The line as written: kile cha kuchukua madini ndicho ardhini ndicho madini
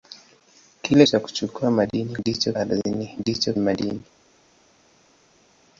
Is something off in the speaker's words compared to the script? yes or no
no